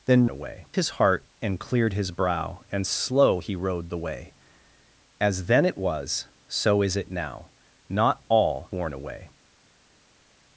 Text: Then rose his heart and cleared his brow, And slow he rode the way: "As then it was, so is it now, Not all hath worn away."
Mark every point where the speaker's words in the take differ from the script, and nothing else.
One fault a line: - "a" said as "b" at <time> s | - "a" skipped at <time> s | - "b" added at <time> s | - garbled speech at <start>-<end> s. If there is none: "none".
- "rose" said as "away" at 0.3 s
- "hath" skipped at 8.7 s